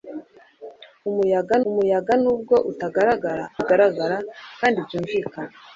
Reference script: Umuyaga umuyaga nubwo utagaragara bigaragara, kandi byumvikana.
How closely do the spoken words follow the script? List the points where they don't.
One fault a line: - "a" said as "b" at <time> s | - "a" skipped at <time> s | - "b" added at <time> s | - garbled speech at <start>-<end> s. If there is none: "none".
none